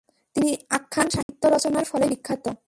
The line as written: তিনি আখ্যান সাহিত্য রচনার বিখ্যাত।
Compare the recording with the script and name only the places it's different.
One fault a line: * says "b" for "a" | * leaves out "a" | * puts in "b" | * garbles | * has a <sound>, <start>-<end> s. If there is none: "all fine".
* has a dropout, 1.2-1.3 s
* puts in "ফলেই"